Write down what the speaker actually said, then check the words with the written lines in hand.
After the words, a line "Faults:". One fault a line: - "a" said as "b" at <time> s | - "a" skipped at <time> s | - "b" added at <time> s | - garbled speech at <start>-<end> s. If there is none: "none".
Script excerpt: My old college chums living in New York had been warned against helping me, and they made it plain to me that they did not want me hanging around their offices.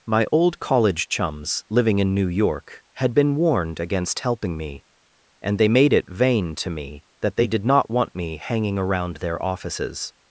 My old college chums living in New York had been warned against helping me, and they made it vain to me that they did not want me hanging around their offices.
Faults:
- "plain" said as "vain" at 6.1 s